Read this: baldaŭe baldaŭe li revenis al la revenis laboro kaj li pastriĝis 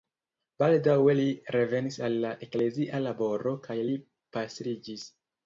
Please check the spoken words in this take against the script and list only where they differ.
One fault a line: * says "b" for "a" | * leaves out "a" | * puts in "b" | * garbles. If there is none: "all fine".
* leaves out "baldaŭe"
* says "eklezia" for "revenis"